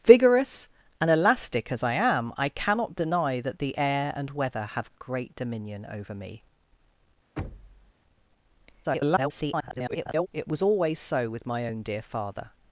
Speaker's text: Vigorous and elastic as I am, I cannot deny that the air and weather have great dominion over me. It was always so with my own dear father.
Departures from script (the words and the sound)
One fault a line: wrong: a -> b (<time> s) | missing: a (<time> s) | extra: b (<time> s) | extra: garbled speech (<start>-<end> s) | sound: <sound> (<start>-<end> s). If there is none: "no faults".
sound: thud (7.4-7.9 s)
extra: garbled speech (8.8-10.3 s)